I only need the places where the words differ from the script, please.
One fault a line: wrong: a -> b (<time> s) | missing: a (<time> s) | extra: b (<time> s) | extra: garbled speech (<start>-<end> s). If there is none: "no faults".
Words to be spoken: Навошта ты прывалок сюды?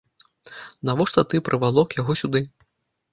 extra: яго (2.0 s)